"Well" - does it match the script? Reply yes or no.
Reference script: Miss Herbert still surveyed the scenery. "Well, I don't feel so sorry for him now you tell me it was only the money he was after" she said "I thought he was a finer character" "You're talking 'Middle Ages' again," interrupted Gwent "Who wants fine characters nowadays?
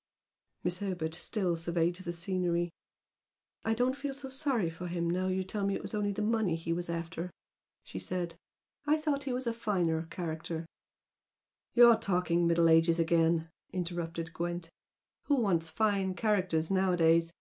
no